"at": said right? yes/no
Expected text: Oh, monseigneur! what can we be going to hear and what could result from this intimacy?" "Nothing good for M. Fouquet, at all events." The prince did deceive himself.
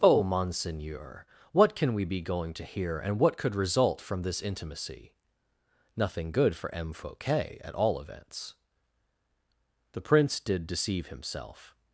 yes